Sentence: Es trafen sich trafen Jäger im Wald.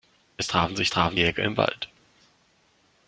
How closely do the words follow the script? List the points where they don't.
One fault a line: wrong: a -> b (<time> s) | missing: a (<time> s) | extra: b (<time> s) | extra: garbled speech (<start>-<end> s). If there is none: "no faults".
no faults